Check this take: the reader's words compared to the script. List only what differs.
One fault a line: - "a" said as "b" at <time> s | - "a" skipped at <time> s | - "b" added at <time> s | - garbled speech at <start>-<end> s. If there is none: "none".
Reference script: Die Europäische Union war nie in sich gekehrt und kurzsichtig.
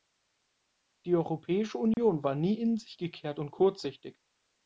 none